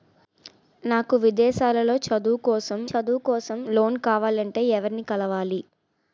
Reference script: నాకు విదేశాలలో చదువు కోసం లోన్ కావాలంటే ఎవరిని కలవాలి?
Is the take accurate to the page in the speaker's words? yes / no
no